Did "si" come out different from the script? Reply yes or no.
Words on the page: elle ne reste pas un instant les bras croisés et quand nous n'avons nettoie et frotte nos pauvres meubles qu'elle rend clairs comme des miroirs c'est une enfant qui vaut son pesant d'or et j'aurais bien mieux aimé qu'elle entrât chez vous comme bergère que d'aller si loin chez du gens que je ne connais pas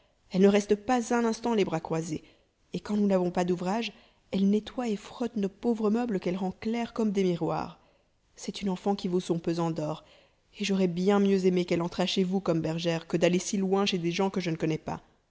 no